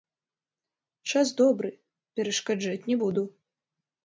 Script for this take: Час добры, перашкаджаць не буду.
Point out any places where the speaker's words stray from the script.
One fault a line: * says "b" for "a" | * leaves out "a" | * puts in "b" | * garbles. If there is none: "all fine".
all fine